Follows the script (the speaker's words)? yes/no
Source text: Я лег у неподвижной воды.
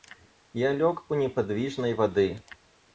yes